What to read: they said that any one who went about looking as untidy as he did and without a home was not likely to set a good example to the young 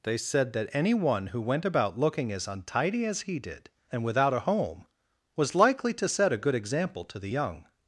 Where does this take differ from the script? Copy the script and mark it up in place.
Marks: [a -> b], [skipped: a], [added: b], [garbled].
they said that any one who went about looking as untidy as he did and without a home was [skipped: not] likely to set a good example to the young